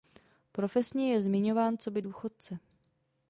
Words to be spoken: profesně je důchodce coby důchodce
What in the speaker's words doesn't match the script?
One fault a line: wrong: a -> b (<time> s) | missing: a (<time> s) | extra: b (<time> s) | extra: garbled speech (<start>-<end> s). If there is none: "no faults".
wrong: důchodce -> zmiňován (1.2 s)